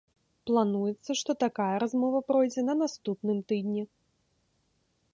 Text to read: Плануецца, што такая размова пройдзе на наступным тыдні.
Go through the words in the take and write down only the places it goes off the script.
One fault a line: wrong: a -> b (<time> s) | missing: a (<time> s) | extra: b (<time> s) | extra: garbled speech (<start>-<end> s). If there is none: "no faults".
no faults